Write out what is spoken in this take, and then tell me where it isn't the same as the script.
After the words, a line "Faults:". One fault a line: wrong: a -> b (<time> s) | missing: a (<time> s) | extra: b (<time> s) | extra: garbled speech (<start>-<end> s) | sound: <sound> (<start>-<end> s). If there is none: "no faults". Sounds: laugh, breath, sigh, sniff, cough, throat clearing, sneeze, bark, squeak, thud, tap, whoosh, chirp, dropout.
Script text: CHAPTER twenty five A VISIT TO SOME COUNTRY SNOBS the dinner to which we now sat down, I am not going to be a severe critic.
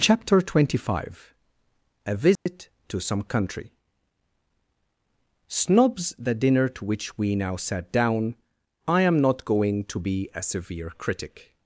CHAPTER twenty five A VISIT TO SOME COUNTRY SNOBS the dinner to which we now sat down, I am not going to be a severe critic.
Faults:
sound: dropout (2.4-2.5 s)